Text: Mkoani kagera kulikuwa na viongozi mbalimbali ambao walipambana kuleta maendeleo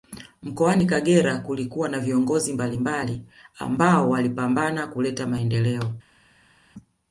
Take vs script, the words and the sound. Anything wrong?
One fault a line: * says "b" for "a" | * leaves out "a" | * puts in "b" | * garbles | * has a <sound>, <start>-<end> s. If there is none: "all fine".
all fine